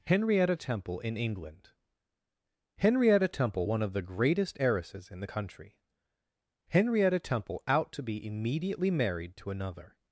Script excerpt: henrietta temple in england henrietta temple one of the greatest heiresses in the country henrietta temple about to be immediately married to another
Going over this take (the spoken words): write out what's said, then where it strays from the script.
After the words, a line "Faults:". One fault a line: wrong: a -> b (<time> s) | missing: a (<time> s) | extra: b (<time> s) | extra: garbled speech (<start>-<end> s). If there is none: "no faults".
henrietta temple in england henrietta temple one of the greatest heiresses in the country henrietta temple out to be immediately married to another
Faults:
wrong: about -> out (7.7 s)